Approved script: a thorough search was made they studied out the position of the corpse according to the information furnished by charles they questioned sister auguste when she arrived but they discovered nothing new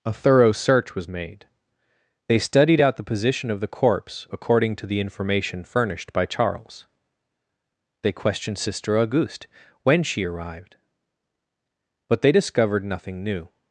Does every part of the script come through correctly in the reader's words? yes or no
yes